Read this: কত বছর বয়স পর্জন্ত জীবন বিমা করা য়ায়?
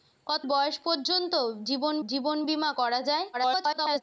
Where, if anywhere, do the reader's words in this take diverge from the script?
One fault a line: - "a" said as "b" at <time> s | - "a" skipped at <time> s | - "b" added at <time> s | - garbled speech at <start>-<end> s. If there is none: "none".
- "বছর" skipped at 0.5 s
- "জীবন" added at 2.0 s
- garbled speech at 3.3-4.0 s